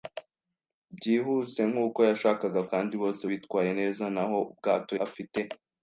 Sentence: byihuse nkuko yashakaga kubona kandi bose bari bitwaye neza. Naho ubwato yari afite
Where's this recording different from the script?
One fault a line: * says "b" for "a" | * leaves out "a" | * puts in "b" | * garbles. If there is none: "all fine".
* leaves out "kubona"
* leaves out "bari"
* leaves out "yari"